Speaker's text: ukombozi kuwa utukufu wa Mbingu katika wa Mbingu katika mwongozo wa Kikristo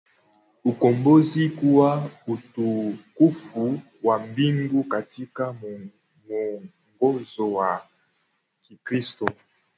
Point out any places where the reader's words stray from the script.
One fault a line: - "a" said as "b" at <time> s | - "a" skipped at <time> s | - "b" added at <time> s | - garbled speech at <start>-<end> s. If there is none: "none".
- "wa Mbingu katika" skipped at 5.6 s